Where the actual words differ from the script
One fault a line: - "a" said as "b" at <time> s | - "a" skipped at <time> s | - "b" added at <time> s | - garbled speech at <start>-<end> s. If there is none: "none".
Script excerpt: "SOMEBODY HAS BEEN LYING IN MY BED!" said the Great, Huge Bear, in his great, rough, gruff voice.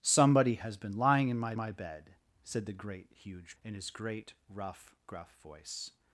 - "MY" added at 1.5 s
- "Bear" skipped at 3.6 s